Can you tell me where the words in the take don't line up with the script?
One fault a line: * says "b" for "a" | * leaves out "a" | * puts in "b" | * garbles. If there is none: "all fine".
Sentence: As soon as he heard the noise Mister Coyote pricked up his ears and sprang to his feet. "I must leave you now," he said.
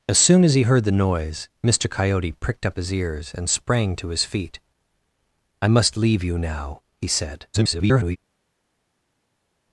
* garbles